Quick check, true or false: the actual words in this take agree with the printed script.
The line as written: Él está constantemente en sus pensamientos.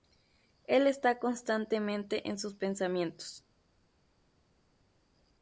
true